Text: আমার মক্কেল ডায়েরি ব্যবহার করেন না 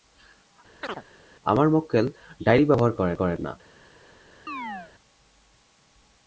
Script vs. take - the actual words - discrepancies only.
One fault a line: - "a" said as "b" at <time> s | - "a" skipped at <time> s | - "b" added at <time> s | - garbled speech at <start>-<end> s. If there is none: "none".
- "করেন" added at 3.1 s